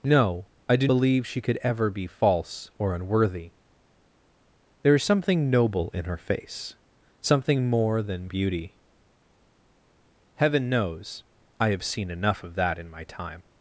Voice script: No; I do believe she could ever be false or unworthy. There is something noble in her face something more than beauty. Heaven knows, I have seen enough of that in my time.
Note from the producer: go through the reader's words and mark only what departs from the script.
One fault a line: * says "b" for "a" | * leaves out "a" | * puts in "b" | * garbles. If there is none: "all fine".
all fine